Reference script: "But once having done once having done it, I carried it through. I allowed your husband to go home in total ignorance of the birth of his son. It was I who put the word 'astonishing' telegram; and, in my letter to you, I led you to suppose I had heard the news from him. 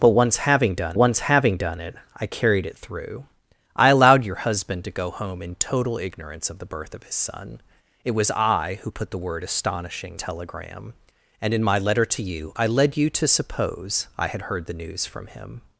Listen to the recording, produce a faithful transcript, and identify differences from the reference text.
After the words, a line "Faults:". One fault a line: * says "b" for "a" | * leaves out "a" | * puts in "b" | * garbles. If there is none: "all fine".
"But once having done once having done it, I carried it through. I allowed your husband to go home in total ignorance of the birth of his son. It was I who put the word 'astonishing' telegram; and, in my letter to you, I led you to suppose I had heard the news from him.
Faults:
all fine